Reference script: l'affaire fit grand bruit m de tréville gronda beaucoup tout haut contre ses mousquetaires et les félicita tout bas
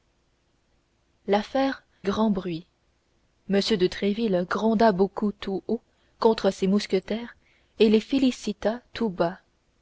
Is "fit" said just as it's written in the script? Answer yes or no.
no